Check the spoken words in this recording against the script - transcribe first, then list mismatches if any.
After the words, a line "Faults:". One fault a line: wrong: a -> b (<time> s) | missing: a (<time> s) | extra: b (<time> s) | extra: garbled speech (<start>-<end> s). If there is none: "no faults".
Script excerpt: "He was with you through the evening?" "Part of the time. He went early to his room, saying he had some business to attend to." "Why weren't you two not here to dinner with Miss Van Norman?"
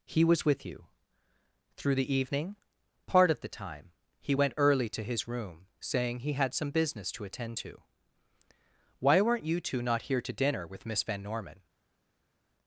"He was with you through the evening?" "Part of the time. He went early to his room, saying he had some business to attend to." "Why weren't you two not here to dinner with Miss Van Norman?"
Faults:
no faults